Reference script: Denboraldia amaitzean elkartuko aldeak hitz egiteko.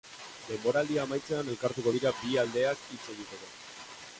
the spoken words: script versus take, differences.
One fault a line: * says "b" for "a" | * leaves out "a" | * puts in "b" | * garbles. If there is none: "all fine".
* puts in "dira bi"